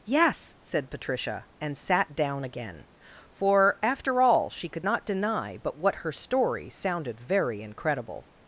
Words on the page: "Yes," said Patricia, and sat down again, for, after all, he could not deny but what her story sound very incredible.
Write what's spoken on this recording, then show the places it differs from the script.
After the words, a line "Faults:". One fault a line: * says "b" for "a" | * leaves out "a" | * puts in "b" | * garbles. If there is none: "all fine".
"Yes," said Patricia, and sat down again, for, after all, she could not deny but what her story sounded very incredible.
Faults:
* says "she" for "he"
* says "sounded" for "sound"